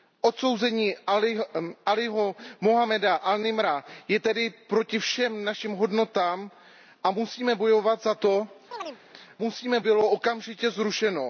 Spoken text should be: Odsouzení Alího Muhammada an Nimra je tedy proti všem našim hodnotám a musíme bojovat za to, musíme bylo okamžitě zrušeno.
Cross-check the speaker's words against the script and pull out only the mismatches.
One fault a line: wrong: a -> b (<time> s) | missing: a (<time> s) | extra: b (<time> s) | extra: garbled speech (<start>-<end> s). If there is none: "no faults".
no faults